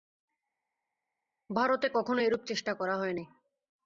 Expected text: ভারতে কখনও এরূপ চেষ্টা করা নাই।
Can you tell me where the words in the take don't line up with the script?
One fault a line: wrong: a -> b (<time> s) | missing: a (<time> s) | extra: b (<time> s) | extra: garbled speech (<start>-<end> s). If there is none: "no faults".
extra: হয় (3.0 s)